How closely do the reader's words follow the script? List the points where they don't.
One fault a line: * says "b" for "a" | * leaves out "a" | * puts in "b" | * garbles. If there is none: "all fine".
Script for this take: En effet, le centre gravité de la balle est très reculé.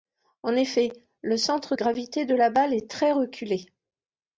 all fine